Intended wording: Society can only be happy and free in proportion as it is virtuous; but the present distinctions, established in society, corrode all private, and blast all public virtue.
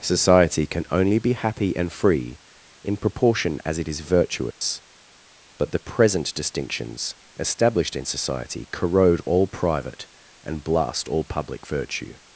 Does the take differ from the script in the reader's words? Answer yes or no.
no